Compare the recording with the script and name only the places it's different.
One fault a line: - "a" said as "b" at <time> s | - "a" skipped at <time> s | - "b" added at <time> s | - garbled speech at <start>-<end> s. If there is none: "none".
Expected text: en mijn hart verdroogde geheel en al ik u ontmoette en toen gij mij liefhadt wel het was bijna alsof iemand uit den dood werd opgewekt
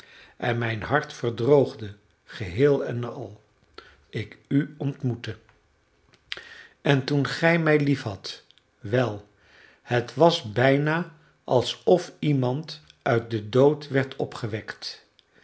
none